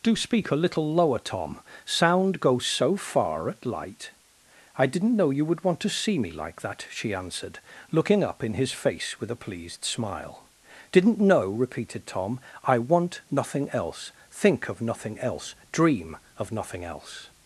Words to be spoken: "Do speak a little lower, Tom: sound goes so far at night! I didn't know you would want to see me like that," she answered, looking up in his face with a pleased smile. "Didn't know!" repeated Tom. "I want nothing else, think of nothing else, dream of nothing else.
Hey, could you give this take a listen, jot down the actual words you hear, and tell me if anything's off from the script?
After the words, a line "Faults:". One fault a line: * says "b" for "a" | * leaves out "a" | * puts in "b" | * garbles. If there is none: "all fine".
"Do speak a little lower, Tom: sound goes so far at light! I didn't know you would want to see me like that," she answered, looking up in his face with a pleased smile. "Didn't know!" repeated Tom. "I want nothing else, think of nothing else, dream of nothing else.
Faults:
* says "light" for "night"